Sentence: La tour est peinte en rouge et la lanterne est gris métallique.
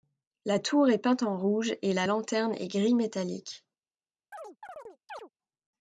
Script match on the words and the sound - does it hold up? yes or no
no